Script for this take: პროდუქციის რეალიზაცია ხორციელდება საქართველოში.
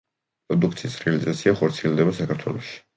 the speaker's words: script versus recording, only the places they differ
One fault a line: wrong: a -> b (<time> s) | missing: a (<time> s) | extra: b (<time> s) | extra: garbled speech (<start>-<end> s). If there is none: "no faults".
no faults